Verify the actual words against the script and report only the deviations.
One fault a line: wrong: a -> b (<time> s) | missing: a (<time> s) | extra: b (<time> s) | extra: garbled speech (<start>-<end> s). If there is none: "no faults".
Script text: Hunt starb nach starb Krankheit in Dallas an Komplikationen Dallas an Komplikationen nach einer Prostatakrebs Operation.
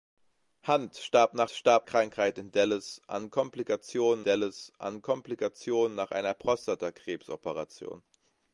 no faults